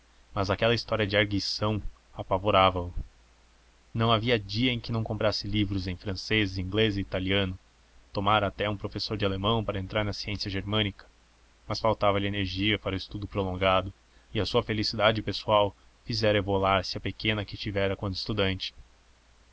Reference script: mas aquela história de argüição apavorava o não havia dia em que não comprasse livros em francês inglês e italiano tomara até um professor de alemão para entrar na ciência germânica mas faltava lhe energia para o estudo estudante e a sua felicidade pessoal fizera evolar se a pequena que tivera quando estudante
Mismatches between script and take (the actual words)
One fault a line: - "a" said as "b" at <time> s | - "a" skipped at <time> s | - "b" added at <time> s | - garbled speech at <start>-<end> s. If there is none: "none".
- "estudante" said as "prolongado" at 13.3 s